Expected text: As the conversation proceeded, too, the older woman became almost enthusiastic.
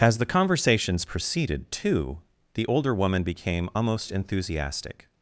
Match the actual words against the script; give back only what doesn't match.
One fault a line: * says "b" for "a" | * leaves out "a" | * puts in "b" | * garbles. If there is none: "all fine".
* says "conversations" for "conversation"